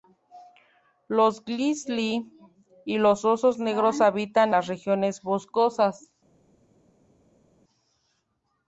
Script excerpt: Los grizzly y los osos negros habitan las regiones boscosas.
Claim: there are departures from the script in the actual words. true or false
false